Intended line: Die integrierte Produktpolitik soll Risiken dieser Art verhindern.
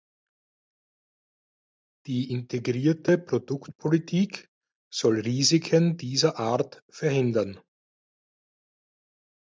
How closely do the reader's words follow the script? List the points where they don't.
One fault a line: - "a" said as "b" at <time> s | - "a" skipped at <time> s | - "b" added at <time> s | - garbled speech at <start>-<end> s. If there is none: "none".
none